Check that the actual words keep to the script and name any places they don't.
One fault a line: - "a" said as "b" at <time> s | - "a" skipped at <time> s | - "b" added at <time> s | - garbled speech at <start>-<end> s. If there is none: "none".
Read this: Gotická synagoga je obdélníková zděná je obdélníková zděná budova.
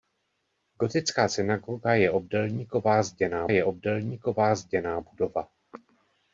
none